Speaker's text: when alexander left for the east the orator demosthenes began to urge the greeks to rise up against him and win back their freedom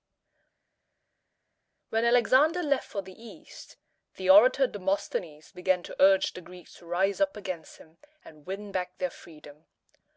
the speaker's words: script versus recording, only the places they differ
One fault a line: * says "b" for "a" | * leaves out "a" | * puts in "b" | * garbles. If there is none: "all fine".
all fine